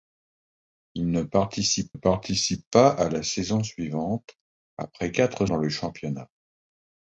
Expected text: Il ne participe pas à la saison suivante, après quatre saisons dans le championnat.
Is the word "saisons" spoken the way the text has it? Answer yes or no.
no